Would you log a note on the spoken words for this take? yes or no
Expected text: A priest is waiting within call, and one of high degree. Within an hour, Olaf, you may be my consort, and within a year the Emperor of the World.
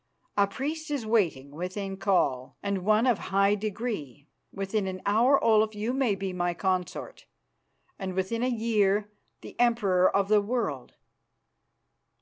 no